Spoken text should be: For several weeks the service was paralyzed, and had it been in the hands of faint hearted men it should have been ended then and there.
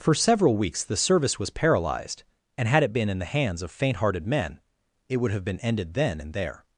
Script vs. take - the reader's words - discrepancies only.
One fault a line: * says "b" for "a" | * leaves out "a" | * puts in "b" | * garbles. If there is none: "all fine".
* says "would" for "should"